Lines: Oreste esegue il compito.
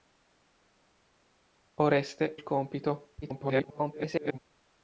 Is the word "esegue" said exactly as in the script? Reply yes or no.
no